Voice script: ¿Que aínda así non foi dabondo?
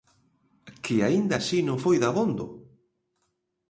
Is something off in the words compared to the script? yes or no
no